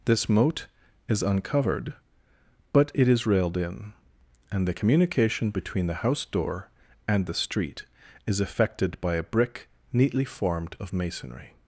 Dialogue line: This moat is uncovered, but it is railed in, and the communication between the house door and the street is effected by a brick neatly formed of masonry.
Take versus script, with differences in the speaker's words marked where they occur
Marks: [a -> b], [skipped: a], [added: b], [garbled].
This moat is uncovered, but it is railed in, and the communication between the house door and the street is effected by a brick neatly formed of masonry.